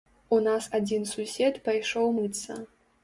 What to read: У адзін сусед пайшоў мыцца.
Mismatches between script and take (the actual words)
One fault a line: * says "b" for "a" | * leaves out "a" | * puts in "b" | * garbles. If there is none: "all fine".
* puts in "нас"